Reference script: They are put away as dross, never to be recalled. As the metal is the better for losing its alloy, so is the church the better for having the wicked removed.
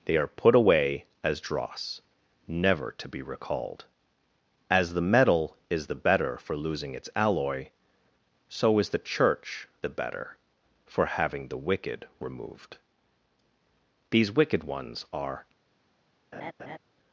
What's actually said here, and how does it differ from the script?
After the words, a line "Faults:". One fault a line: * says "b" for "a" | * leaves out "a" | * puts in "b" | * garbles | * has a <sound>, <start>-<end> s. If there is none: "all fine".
They are put away as dross, never to be recalled. As the metal is the better for losing its alloy, so is the church the better for having the wicked removed. These wicked ones are
Faults:
* puts in "These wicked ones are"
* has a laugh, 16.3-16.8 s